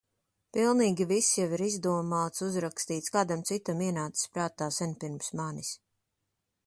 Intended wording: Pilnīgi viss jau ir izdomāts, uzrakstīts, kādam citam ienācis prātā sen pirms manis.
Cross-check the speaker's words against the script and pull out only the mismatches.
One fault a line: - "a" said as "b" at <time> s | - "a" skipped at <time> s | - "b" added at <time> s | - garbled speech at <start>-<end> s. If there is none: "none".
none